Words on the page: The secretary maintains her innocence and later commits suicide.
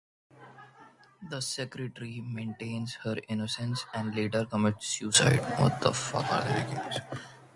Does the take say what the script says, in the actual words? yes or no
yes